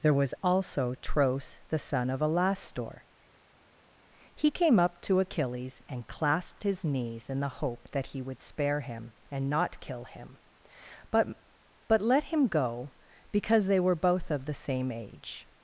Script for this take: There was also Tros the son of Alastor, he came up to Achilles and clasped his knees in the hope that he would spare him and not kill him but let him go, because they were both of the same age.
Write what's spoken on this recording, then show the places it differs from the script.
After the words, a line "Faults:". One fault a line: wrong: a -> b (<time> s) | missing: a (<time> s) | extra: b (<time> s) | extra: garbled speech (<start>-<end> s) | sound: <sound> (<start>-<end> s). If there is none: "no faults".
There was also Tros the son of Alastor, he came up to Achilles and clasped his knees in the hope that he would spare him and not kill him but but let him go, because they were both of the same age.
Faults:
extra: but (11.9 s)